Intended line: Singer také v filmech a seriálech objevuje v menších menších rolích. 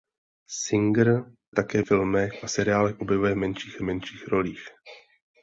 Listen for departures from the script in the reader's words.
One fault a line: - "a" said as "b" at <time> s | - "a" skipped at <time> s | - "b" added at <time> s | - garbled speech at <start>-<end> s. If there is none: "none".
none